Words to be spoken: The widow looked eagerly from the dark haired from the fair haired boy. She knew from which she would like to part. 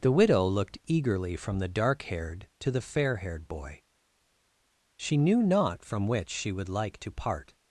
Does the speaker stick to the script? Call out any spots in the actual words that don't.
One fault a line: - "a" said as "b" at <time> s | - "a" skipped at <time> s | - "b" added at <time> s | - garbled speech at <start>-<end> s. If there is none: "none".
- "from" said as "to" at 2.6 s
- "not" added at 5.4 s